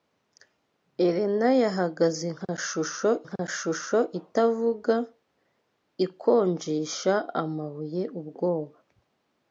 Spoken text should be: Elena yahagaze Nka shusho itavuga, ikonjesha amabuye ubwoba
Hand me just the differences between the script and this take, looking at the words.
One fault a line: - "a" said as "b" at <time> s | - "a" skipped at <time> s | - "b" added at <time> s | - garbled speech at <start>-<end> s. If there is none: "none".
- "Nka shusho" added at 3.3 s